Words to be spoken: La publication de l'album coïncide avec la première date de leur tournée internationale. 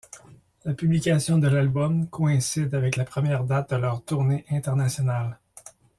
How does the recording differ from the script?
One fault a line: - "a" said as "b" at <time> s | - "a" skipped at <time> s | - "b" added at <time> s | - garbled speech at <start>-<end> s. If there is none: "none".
none